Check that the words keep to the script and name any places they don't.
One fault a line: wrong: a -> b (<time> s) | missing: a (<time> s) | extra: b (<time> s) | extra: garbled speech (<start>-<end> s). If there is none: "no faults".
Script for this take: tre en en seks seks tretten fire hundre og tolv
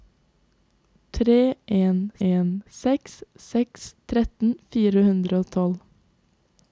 no faults